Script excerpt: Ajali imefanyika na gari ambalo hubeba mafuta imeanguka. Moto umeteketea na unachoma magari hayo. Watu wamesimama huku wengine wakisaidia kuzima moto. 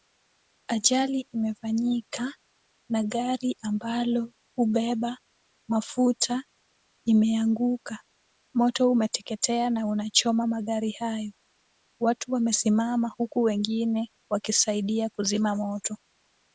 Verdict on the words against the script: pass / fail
pass